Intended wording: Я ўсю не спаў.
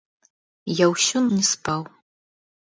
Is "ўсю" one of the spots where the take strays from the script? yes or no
no